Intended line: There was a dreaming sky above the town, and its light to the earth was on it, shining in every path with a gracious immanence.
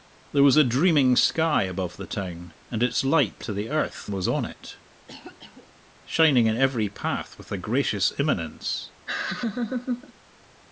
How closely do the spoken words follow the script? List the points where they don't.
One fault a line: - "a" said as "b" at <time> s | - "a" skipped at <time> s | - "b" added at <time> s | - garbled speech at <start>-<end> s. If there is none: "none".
none